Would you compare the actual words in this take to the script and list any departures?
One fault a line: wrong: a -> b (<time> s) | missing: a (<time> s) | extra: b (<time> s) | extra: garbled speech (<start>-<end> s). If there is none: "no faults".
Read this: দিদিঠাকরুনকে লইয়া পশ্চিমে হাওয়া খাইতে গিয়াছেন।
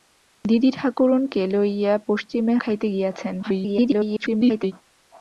missing: হাওয়া (2.5 s)
extra: garbled speech (3.4-4.7 s)